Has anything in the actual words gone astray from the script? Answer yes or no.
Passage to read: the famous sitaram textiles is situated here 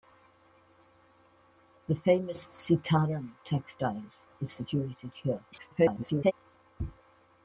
yes